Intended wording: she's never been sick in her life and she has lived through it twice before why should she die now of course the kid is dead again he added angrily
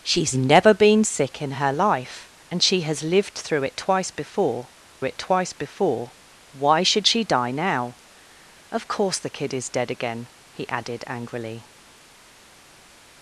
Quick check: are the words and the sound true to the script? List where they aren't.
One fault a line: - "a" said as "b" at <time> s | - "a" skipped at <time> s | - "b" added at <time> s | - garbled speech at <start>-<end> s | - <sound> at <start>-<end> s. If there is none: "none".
- "it twice before" added at 5.0 s